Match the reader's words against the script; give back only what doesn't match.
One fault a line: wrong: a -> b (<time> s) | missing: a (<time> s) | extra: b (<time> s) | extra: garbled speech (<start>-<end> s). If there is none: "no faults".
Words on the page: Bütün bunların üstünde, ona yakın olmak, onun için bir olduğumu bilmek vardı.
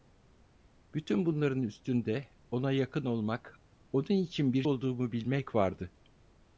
no faults